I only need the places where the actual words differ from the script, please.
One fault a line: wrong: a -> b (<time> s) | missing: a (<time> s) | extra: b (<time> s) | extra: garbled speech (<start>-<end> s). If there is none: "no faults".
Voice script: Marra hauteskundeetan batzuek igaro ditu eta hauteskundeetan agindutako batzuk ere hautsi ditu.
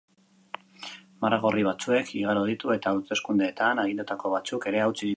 wrong: hauteskundeetan -> gorri (1.4 s)